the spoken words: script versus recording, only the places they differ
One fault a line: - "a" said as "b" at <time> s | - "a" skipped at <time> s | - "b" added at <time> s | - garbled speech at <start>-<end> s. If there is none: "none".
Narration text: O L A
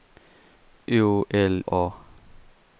none